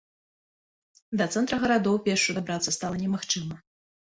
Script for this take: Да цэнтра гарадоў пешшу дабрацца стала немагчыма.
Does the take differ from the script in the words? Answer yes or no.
no